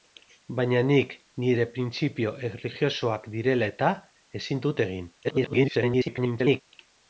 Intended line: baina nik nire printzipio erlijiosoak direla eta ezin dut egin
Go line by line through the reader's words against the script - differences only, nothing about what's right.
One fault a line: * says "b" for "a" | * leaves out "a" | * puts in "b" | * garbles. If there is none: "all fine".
* garbles